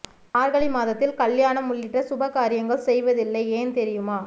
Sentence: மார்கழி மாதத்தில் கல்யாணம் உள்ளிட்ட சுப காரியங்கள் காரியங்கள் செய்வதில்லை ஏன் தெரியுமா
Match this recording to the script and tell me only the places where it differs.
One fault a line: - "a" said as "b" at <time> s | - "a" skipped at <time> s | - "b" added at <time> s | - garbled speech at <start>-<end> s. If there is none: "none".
- "காரியங்கள்" skipped at 2.9 s